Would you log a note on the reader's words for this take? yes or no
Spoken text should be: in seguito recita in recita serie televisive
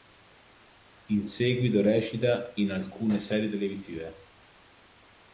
yes